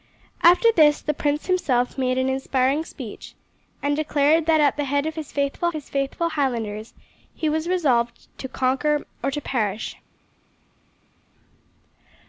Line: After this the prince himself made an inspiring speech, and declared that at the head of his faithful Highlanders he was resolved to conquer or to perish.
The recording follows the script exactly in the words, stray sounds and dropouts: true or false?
false